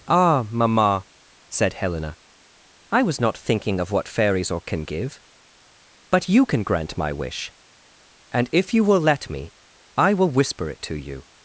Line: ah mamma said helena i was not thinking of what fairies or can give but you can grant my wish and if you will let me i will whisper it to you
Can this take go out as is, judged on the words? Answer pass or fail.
pass